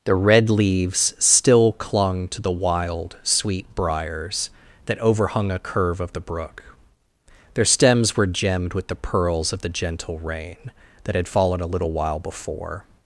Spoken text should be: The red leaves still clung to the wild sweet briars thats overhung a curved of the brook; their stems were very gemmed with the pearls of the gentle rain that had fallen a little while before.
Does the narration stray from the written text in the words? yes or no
yes